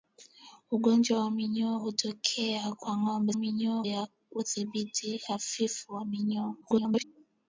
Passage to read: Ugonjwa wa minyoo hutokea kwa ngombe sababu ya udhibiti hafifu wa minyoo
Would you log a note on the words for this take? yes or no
yes